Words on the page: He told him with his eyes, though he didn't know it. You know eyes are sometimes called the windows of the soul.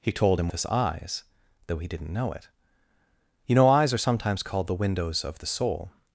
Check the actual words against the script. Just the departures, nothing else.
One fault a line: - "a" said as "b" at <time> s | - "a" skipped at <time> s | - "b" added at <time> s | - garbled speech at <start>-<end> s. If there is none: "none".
- "with" skipped at 0.5 s